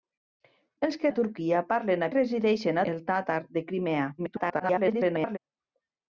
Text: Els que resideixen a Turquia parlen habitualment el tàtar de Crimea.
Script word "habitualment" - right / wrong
wrong